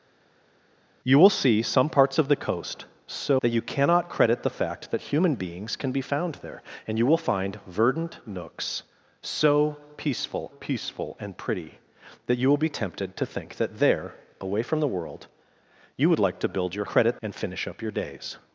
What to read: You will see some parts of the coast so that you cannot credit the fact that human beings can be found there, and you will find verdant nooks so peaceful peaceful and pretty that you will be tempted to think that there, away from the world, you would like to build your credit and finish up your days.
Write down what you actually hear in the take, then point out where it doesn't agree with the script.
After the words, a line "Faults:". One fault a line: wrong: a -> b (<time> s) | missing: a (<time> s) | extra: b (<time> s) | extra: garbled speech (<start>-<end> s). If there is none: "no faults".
You will see some parts of the coast so that you cannot credit the fact that human beings can be found there, and you will find verdant nooks so peaceful peaceful and pretty that you will be tempted to think that there, away from the world, you would like to build your credit and finish up your days.
Faults:
no faults